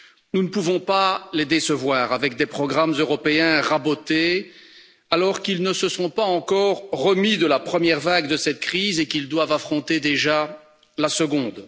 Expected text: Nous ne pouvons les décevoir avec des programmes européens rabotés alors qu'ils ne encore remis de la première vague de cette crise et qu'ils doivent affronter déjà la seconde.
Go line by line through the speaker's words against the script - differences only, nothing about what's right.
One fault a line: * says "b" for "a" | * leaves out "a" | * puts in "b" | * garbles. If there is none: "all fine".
* puts in "pas"
* puts in "se sont pas"